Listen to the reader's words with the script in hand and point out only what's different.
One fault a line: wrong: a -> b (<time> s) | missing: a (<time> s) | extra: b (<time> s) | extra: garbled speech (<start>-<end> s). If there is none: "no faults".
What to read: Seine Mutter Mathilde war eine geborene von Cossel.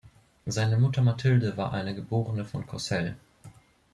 no faults